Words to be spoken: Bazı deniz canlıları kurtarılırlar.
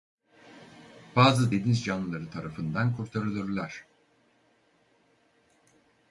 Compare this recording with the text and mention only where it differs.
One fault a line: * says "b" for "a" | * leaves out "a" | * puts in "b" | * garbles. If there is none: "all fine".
* puts in "tarafından"